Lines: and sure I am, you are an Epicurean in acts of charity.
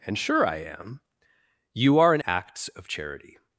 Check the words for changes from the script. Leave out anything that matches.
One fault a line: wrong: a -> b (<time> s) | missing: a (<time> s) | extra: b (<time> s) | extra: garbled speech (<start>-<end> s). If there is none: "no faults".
missing: Epicurean in (2.2 s)